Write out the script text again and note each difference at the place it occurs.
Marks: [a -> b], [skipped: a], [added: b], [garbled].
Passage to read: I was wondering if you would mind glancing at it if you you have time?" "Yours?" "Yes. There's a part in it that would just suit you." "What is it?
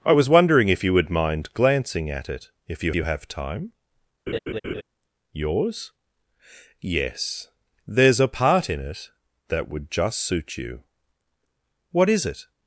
I was wondering if you would mind glancing at it if you you have time?" "Yours?" "Yes. There's a part in it that would just suit you." "What is it?